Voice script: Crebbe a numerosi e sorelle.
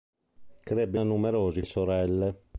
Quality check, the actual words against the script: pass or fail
pass